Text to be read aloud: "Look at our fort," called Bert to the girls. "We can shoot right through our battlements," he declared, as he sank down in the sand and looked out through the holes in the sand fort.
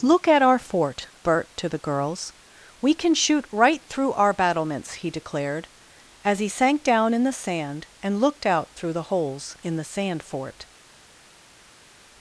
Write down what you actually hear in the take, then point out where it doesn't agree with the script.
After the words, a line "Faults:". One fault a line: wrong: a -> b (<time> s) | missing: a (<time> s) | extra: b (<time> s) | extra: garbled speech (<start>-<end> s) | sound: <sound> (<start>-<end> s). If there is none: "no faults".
"Look at our fort," Bert to the girls. "We can shoot right through our battlements," he declared, as he sank down in the sand and looked out through the holes in the sand fort.
Faults:
missing: called (1.1 s)